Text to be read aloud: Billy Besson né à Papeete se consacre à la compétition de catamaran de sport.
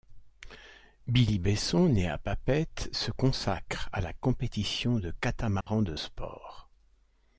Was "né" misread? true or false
false